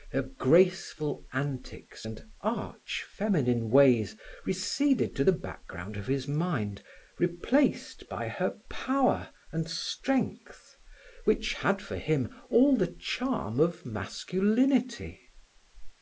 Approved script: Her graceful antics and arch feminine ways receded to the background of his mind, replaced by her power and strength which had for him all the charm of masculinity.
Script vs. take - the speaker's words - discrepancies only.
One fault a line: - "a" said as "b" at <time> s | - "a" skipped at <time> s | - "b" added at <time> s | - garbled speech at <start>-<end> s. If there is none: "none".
none